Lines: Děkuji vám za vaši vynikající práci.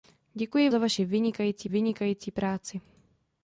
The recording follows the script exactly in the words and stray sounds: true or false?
false